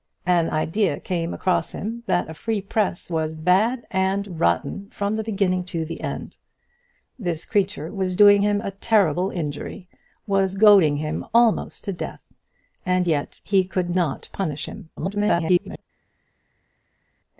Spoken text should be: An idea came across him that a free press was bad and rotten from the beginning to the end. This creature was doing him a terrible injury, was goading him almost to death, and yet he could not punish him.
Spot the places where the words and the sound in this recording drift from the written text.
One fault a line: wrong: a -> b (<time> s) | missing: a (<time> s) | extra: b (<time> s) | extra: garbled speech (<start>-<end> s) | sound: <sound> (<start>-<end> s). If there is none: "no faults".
extra: garbled speech (15.0-15.8 s)